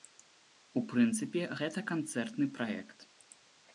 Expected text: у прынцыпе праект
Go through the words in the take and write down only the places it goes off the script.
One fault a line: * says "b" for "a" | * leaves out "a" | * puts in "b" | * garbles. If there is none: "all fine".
* puts in "гэта канцэртны"